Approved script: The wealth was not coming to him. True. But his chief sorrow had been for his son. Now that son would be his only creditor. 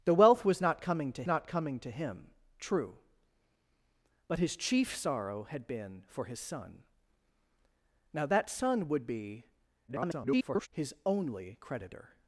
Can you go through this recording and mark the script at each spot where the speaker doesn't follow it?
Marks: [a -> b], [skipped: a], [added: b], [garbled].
The wealth was not coming to [added: not coming to] him. True. But his chief sorrow had been for his son. Now that son would be [garbled] his only creditor.